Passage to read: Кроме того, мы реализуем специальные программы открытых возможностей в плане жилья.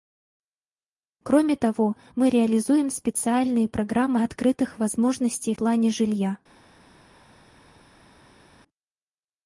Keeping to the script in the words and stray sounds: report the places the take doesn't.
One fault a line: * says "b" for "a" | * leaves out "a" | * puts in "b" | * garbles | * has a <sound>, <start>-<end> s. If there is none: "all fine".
* leaves out "в"